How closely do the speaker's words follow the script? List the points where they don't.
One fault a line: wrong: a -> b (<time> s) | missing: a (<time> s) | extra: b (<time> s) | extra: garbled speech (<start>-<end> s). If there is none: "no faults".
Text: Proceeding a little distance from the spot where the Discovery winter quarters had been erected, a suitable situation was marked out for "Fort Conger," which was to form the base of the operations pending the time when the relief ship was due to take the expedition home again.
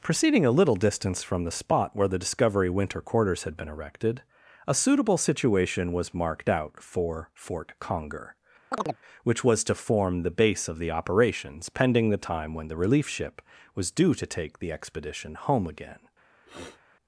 no faults